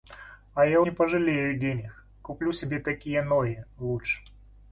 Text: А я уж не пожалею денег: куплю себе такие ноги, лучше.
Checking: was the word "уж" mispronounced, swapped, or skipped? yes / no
yes